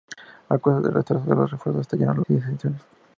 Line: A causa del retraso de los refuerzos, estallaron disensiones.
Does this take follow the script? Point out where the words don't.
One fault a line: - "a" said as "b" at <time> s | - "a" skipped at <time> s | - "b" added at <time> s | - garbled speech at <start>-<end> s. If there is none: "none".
none